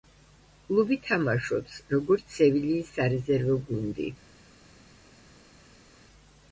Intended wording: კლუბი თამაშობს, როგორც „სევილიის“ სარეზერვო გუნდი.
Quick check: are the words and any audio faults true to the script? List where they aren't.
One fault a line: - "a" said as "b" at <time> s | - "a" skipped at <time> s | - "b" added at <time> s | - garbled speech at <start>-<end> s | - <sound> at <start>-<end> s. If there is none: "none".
none